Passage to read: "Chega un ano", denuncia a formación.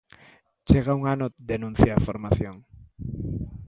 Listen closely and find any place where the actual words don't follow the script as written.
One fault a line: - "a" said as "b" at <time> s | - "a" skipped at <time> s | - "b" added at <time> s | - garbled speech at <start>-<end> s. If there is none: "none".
none